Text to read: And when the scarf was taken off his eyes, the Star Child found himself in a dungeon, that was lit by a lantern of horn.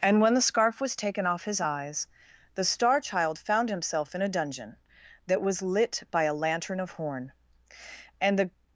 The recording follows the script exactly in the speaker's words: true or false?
false